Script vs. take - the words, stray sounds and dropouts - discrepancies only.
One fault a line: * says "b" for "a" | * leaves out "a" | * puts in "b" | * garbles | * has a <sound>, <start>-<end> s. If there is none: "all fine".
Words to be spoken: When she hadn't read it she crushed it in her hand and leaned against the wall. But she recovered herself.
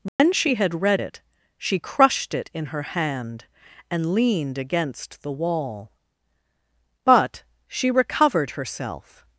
* has a dropout, 0.1-0.2 s
* says "had" for "hadn't"